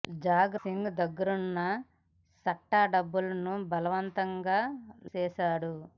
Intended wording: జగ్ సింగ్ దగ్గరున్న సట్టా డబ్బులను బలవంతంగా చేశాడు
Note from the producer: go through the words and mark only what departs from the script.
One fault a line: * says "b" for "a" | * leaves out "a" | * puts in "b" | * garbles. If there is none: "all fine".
all fine